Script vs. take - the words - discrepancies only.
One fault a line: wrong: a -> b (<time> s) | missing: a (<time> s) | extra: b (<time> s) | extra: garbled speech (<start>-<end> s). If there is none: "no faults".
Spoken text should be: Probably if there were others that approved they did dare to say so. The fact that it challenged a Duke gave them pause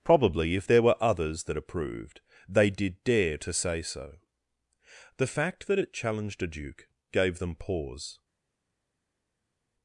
no faults